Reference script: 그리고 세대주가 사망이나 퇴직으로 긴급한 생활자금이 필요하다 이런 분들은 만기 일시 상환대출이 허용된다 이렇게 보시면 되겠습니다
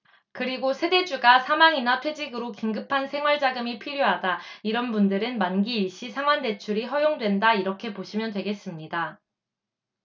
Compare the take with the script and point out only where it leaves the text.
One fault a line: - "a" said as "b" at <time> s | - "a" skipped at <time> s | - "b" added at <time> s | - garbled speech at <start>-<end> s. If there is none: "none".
none